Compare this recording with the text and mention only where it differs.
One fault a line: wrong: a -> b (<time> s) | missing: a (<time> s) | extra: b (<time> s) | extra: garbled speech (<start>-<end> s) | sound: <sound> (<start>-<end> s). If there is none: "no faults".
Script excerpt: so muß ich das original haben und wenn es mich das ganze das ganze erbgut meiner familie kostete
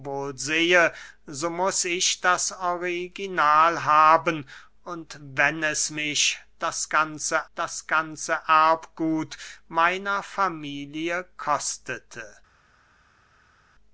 no faults